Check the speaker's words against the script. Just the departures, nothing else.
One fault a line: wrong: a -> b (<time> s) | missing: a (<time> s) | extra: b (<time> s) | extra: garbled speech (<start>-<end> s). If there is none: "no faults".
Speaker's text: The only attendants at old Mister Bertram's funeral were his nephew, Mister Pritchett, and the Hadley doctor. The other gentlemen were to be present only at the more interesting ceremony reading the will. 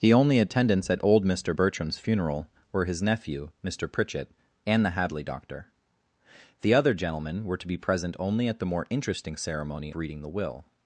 no faults